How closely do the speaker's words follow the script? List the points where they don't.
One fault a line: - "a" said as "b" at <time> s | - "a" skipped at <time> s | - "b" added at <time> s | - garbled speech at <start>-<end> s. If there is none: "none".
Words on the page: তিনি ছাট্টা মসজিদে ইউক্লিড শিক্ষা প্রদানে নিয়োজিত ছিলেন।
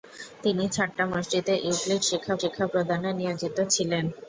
- "শিক্ষা" added at 2.4 s